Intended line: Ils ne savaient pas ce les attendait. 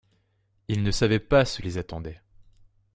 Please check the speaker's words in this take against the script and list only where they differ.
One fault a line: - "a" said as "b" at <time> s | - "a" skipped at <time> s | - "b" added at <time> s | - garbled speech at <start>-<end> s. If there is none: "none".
none